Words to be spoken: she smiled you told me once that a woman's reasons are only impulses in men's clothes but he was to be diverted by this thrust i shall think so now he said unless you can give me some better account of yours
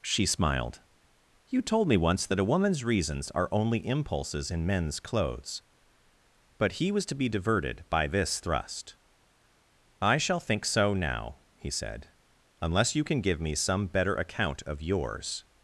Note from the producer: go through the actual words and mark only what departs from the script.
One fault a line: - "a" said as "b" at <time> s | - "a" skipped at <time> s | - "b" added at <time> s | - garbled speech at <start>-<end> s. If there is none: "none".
none